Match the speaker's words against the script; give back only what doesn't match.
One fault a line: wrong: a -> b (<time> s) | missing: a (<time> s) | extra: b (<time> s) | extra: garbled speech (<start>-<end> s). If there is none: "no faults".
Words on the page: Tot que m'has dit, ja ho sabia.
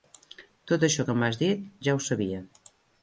extra: això (0.9 s)